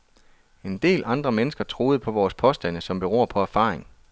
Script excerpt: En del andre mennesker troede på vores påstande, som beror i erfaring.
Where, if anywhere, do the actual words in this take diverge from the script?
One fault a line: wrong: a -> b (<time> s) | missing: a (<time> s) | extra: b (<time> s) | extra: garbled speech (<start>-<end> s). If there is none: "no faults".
wrong: i -> på (3.3 s)